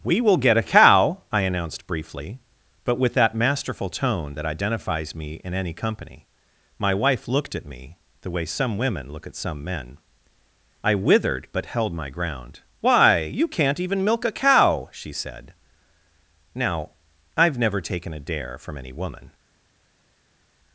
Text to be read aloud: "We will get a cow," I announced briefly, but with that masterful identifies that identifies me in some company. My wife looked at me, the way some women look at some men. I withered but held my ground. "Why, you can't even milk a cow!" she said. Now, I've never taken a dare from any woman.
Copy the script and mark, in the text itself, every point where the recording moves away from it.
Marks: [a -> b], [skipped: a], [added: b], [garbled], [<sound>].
"We will get a cow," I announced briefly, but with that masterful [identifies -> tone] that identifies me in [some -> any] company. My wife looked at me, the way some women look at some men. I withered but held my ground. "Why, you can't even milk a cow!" she said. Now, I've never taken a dare from any woman.